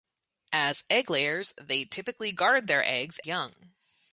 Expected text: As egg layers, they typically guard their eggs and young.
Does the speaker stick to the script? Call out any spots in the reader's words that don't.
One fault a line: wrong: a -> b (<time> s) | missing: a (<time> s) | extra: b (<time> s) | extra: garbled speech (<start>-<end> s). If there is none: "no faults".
missing: and (3.2 s)